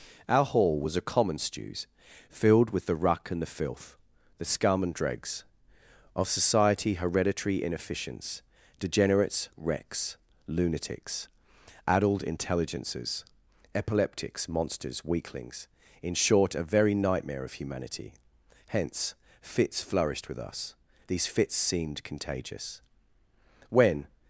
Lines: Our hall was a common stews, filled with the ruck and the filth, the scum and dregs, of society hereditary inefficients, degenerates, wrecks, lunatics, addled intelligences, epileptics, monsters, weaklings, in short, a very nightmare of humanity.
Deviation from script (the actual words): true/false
true